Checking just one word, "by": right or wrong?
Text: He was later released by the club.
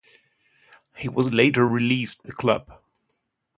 wrong